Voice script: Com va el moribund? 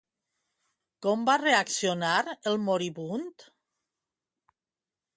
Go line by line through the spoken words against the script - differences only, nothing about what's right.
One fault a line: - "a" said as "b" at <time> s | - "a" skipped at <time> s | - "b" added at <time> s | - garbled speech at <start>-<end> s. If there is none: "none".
- "reaccionar" added at 1.4 s